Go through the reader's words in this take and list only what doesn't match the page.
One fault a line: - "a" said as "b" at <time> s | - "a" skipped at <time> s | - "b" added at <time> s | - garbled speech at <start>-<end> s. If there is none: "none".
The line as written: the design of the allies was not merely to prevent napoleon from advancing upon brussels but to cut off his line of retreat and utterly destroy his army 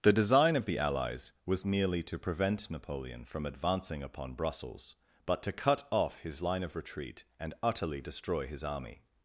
- "not" skipped at 1.6 s